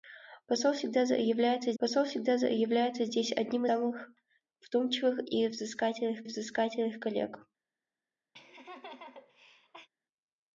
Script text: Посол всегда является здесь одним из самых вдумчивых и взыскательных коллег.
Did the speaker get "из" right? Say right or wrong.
wrong